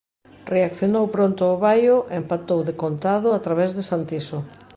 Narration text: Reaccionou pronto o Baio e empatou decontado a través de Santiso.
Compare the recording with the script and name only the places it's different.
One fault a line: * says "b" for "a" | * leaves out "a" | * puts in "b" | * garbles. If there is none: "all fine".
all fine